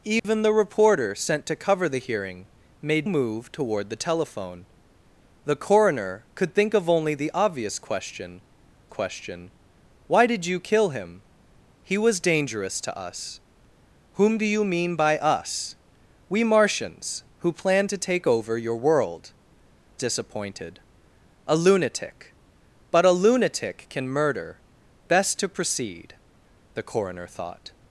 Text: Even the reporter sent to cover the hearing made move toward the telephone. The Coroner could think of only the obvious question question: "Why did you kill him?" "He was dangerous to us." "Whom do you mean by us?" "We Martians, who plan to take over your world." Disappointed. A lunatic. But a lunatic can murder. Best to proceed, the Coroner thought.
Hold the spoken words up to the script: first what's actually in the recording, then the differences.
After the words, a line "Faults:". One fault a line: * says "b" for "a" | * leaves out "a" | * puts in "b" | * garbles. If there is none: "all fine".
Even the reporter sent to cover the hearing made move toward the telephone. The Coroner could think of only the obvious question question: "Why did you kill him?" "He was dangerous to us." "Whom do you mean by us?" "We Martians, who plan to take over your world." Disappointed. A lunatic. But a lunatic can murder. Best to proceed, the Coroner thought.
Faults:
all fine